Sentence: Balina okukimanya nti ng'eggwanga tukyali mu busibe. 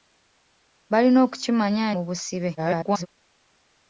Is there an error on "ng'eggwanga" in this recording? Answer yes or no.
yes